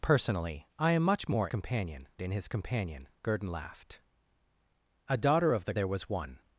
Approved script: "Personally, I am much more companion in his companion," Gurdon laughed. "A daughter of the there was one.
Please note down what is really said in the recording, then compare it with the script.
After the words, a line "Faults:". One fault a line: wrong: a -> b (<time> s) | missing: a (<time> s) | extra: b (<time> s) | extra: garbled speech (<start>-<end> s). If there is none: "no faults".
"Personally, I am much more companion in his companion," Gurdon laughed. "A daughter of the there was one.
Faults:
no faults